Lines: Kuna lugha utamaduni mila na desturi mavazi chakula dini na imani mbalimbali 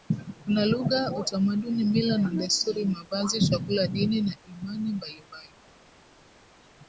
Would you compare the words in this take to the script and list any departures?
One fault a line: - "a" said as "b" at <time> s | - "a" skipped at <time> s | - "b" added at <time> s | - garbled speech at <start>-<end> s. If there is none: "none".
none